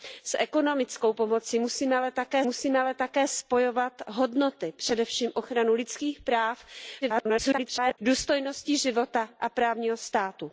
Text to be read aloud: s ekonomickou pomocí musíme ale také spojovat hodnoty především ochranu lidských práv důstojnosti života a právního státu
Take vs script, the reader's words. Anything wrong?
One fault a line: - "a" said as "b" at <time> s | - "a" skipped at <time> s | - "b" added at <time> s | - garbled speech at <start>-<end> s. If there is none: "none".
- "musíme ale také" added at 2.4 s
- garbled speech at 7.0-8.0 s